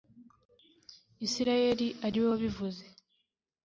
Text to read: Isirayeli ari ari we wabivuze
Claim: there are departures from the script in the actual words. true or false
true